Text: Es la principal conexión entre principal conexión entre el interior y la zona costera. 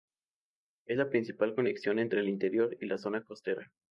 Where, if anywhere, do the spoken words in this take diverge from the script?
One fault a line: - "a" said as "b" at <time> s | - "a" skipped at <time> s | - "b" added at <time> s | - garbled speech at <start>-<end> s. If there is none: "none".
- "principal conexión entre" skipped at 2.2 s